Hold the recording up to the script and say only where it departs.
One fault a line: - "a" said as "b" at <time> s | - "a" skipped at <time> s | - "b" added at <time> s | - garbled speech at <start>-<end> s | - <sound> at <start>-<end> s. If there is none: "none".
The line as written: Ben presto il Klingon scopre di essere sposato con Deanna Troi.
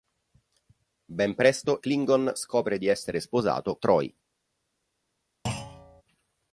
- "il" skipped at 1.8 s
- "con Deanna" skipped at 3.8 s
- thud at 5.5-6.0 s